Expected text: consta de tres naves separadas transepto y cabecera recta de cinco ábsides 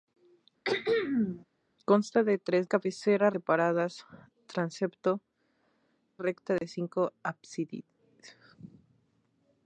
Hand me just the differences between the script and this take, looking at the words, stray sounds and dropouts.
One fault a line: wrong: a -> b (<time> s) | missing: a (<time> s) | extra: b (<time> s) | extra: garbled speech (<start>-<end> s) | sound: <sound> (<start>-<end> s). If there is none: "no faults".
sound: throat clearing (0.6-1.4 s)
wrong: naves -> cabecera (2.6 s)
missing: y cabecera (5.2 s)
sound: dropout (6.6-6.6 s)